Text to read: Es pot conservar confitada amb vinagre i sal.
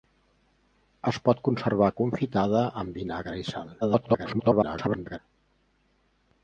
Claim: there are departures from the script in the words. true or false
true